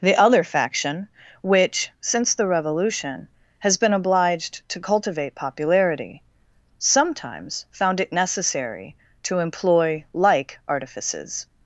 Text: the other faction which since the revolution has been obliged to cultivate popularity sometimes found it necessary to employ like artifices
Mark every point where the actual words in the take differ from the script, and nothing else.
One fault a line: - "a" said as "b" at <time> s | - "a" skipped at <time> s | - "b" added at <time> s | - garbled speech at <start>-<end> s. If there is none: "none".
none